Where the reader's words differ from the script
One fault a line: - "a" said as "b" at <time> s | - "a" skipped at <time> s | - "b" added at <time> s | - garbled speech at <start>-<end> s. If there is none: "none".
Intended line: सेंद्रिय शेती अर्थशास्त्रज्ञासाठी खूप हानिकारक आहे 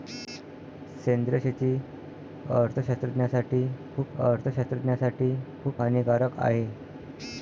- "अर्थशास्त्रज्ञासाठी खूप" added at 4.2 s